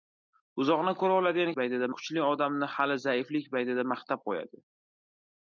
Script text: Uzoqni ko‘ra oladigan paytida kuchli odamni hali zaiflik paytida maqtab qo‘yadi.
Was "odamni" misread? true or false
false